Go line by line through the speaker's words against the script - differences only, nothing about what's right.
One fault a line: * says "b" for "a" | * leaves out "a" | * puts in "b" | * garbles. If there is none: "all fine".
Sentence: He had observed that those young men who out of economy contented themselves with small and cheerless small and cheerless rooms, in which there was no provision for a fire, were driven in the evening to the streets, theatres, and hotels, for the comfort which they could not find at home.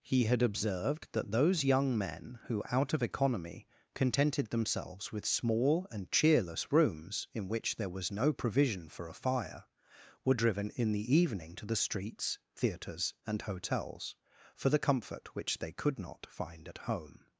* leaves out "small and cheerless"